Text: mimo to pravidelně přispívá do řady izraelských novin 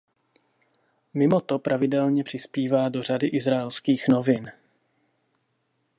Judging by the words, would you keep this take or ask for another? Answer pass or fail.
pass